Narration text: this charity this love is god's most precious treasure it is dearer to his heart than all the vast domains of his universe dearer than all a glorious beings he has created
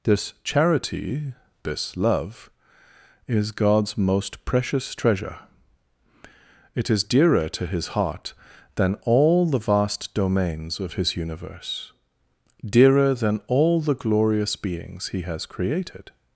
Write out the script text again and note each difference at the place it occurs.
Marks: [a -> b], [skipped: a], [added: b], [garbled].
this charity this love is god's most precious treasure it is dearer to his heart than all the vast domains of his universe dearer than all [a -> the] glorious beings he has created